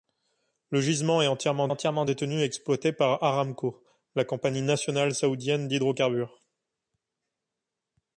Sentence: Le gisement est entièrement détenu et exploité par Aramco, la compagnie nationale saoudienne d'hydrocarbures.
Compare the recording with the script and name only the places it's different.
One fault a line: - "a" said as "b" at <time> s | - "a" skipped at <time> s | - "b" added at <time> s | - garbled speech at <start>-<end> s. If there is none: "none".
- "entièrement" added at 1.7 s